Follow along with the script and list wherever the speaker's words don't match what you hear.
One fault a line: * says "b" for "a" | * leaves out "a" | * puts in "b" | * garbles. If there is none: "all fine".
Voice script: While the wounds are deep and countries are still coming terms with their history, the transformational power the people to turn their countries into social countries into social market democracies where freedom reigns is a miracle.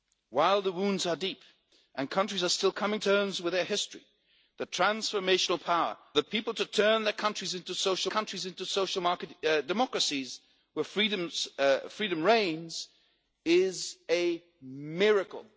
all fine